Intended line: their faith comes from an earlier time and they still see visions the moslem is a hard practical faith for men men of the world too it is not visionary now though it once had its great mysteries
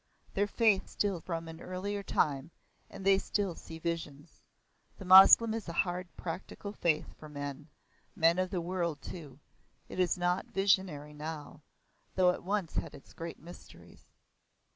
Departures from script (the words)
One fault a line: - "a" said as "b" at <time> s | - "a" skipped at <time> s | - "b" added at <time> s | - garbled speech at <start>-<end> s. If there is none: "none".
- "comes" said as "still" at 0.8 s